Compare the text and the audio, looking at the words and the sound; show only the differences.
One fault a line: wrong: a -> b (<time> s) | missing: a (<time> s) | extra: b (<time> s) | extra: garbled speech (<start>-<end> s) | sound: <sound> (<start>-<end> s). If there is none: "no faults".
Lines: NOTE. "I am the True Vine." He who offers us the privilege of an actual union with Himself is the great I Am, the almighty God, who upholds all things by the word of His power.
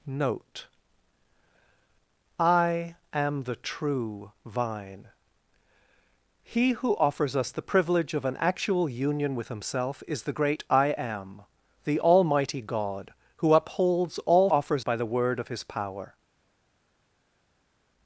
wrong: things -> offers (14.5 s)